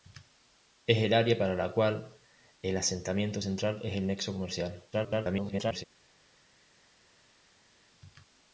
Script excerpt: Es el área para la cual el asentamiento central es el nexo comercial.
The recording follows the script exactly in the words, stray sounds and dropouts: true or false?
false